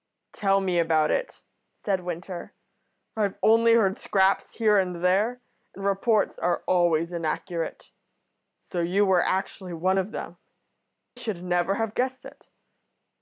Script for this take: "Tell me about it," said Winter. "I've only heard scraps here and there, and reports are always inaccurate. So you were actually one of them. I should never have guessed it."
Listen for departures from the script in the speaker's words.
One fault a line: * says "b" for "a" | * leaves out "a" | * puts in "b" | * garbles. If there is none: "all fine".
* leaves out "I"